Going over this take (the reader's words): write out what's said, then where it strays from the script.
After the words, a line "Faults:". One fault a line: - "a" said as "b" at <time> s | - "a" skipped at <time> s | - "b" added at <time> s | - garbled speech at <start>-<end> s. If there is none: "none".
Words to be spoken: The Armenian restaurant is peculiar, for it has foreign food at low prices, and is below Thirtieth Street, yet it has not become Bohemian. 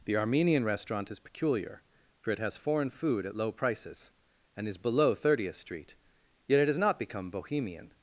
The Armenian restaurant is peculiar, for it has foreign food at low prices, and is below Thirtieth Street, yet it has not become Bohemian.
Faults:
none